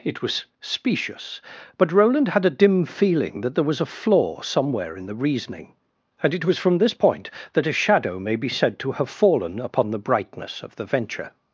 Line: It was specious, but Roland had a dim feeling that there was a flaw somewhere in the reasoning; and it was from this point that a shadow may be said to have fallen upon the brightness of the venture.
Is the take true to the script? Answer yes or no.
yes